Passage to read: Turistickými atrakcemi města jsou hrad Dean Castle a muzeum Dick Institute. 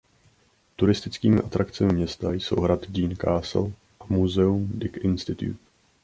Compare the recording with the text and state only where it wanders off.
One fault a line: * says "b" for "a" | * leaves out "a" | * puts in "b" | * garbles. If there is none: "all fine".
all fine